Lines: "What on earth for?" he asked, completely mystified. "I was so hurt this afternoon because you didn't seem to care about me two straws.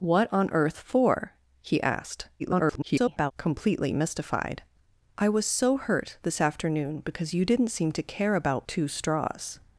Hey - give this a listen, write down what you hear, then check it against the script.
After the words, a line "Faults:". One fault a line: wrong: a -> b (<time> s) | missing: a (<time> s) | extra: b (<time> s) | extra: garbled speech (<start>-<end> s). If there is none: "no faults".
"What on earth for?" he asked, [garbled] completely mystified. "I was so hurt this afternoon because you didn't seem to care about two straws.
Faults:
extra: garbled speech (2.4-3.3 s)
missing: me (8.7 s)